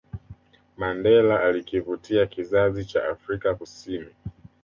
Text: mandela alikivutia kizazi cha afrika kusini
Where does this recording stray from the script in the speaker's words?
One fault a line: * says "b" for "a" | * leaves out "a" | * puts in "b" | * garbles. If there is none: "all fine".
all fine